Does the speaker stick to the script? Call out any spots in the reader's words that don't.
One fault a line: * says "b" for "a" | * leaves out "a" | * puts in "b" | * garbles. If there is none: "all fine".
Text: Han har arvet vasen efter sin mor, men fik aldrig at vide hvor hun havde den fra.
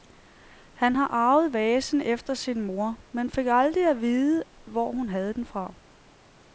all fine